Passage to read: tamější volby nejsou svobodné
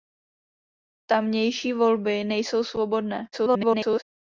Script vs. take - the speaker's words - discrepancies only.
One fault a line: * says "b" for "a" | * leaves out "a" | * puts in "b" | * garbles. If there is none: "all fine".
* garbles